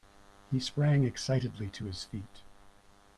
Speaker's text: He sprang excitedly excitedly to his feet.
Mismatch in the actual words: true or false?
true